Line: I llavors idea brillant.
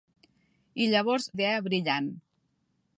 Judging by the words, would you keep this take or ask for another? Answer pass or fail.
pass